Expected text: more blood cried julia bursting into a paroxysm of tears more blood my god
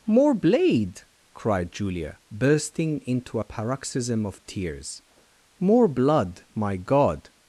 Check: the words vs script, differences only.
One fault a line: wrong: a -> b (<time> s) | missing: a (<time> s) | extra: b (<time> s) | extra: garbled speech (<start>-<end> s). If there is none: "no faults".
wrong: blood -> blade (0.3 s)